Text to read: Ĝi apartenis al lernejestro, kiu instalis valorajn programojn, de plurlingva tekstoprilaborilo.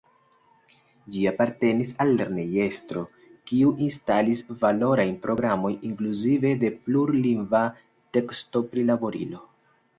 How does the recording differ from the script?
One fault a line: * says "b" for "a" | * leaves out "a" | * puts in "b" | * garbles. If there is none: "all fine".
* puts in "inkluzive"